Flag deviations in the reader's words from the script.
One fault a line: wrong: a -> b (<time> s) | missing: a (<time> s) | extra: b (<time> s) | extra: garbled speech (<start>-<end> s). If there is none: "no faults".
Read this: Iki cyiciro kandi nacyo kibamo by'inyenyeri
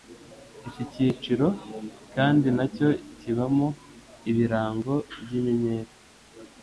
extra: ibirango (4.3 s)